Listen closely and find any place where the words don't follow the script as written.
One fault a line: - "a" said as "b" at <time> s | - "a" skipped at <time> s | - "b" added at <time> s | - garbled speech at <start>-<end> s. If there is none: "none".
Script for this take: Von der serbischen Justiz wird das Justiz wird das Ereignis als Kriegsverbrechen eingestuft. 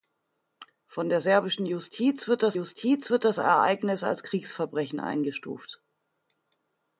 none